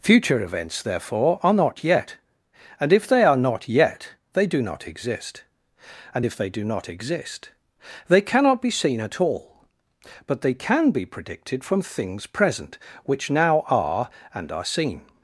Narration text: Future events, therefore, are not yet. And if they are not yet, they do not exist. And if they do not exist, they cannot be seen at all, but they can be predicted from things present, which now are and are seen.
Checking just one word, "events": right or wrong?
right